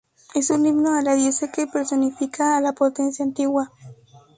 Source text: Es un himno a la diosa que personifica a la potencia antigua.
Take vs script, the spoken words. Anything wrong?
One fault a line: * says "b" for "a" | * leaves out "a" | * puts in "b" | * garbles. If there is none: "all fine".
all fine